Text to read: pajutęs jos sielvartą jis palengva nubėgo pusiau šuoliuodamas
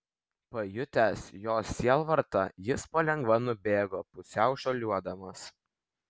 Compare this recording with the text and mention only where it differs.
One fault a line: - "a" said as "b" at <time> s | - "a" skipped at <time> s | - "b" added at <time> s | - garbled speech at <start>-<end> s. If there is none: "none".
none